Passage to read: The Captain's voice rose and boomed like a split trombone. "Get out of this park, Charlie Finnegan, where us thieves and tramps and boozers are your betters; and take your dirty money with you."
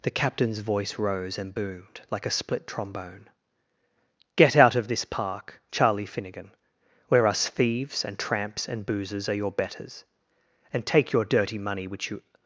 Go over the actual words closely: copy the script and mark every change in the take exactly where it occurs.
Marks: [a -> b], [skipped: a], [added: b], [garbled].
The Captain's voice rose and boomed like a split trombone. "Get out of this park, Charlie Finnegan, where us thieves and tramps and boozers are your betters; and take your dirty money [with -> which] you."